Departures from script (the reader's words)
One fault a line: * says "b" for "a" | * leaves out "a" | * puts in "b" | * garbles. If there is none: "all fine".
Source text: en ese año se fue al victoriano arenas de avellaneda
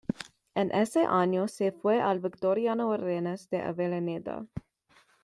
all fine